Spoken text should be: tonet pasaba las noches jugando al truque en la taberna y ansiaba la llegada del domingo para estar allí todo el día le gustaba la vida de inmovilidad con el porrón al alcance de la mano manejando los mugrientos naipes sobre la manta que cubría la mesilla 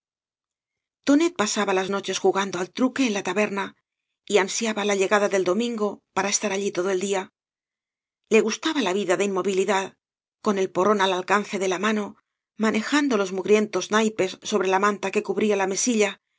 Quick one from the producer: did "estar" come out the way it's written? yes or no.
yes